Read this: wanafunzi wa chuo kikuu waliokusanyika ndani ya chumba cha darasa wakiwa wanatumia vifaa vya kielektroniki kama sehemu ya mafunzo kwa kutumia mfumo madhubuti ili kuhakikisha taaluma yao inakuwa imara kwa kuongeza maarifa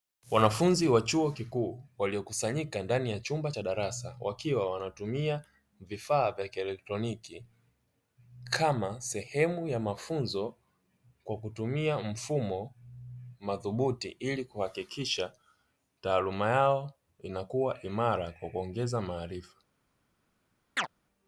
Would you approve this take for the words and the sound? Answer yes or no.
no